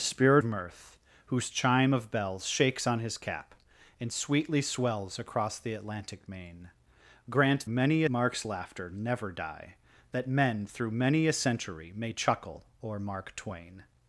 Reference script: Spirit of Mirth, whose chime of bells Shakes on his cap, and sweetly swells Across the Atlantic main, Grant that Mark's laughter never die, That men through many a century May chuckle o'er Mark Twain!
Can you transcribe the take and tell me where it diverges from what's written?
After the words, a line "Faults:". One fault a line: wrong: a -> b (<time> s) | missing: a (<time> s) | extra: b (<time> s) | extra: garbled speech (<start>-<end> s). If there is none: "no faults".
Spirit Mirth, whose chime of bells Shakes on his cap, and sweetly swells Across the Atlantic main, Grant many Mark's laughter never die, That men through many a century May chuckle o'er Mark Twain!
Faults:
missing: of (0.4 s)
wrong: that -> many (7.7 s)